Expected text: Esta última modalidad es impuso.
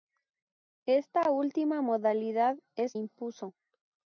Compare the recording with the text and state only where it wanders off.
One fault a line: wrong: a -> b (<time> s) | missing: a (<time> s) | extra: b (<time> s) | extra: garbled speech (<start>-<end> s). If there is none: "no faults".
no faults